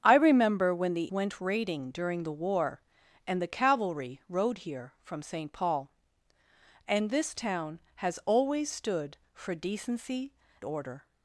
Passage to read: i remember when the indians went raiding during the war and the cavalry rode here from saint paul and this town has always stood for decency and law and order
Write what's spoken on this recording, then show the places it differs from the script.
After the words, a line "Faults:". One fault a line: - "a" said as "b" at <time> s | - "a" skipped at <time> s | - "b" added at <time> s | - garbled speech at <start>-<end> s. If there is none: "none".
i remember when the went raiding during the war and the cavalry rode here from saint paul and this town has always stood for decency order
Faults:
- "indians" skipped at 1.1 s
- "and law and" skipped at 10.3 s